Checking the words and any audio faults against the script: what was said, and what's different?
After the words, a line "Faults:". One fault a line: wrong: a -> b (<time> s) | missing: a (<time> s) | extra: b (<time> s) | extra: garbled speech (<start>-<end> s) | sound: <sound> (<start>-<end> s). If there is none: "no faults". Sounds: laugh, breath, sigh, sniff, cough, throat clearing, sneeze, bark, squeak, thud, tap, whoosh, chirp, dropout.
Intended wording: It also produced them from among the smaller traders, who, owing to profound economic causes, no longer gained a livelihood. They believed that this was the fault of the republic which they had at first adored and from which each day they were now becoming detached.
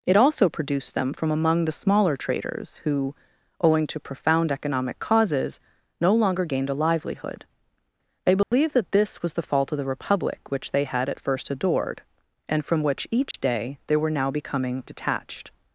It also produced them from among the smaller traders, who, owing to profound economic causes, no longer gained a livelihood. They believed that this was the fault of the republic which they had at first adored and from which each day they were now becoming detached.
Faults:
sound: dropout (8.4-8.5 s)
sound: dropout (13.3-13.3 s)